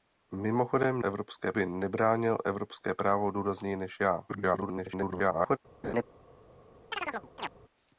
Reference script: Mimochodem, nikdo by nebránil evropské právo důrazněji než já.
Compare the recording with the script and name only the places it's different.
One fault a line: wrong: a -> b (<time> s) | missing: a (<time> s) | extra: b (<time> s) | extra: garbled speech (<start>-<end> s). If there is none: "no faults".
wrong: nikdo -> evropské (1.0 s)
extra: garbled speech (4.3-5.6 s)